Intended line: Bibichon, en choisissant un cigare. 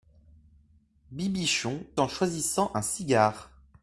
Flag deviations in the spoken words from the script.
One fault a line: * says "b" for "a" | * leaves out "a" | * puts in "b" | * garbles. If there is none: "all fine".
all fine